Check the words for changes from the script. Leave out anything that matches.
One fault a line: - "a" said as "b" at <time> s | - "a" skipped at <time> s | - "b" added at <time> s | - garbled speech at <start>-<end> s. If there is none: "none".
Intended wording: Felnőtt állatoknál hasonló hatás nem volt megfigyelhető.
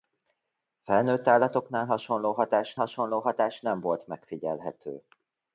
- "hasonló hatás" added at 2.7 s